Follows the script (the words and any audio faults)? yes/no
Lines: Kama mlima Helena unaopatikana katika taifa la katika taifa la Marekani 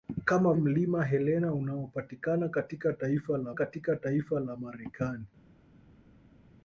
yes